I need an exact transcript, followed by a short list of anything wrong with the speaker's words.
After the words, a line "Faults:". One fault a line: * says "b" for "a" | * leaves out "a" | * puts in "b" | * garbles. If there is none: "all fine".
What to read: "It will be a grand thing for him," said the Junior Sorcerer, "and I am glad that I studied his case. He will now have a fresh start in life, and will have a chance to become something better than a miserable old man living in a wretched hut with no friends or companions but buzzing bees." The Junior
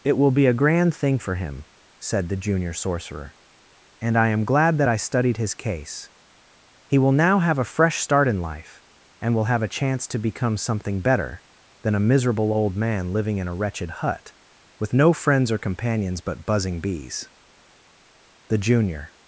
"It will be a grand thing for him," said the Junior Sorcerer, "and I am glad that I studied his case. He will now have a fresh start in life, and will have a chance to become something better than a miserable old man living in a wretched hut with no friends or companions but buzzing bees." The Junior
Faults:
all fine